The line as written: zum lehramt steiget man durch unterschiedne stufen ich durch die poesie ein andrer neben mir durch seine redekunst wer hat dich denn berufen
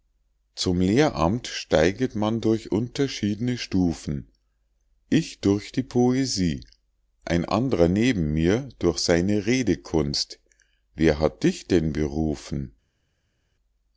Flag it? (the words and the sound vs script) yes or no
no